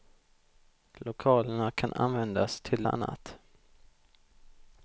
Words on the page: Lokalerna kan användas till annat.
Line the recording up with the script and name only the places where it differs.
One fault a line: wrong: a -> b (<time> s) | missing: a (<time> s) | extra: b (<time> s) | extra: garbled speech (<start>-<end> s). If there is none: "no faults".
no faults